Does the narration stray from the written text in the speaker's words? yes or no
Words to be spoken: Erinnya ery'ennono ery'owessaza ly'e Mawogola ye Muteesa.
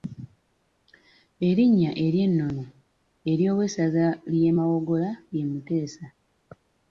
no